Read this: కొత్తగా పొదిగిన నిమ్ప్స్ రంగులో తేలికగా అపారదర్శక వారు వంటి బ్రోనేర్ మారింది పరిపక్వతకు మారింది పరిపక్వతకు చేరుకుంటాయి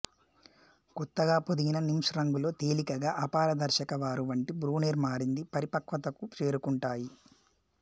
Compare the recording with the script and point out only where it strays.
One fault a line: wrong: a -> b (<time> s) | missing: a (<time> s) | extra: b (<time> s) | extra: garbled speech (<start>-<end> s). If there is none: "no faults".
missing: మారింది పరిపక్వతకు (6.2 s)